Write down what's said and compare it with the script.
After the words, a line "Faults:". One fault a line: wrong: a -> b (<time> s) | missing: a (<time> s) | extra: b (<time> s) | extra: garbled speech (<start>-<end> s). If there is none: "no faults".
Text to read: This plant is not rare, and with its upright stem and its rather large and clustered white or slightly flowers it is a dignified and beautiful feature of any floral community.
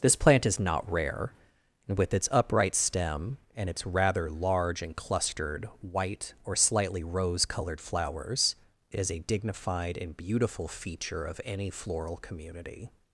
This plant is not rare, and with its upright stem and its rather large and clustered white or slightly rose colored flowers it is a dignified and beautiful feature of any floral community.
Faults:
extra: rose colored (7.0 s)